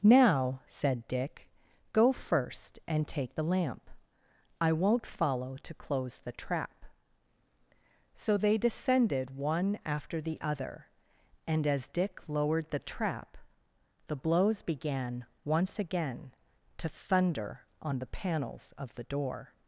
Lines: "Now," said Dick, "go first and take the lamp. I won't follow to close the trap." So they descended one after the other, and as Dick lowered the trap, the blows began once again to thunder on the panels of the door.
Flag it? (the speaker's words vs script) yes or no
no